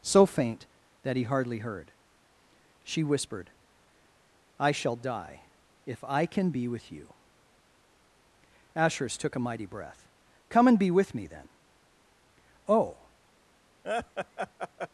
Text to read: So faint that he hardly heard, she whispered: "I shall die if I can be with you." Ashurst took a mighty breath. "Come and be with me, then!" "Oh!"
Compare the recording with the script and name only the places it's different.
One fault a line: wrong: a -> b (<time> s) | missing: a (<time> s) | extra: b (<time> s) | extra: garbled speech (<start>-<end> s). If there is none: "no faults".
no faults